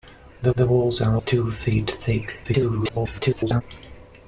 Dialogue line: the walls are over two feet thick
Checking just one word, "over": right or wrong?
wrong